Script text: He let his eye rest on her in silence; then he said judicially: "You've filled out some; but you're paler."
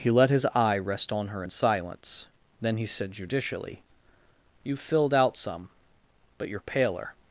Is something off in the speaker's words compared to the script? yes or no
no